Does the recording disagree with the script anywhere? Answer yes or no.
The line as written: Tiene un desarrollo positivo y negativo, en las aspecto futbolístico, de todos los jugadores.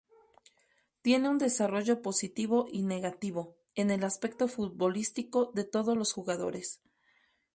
yes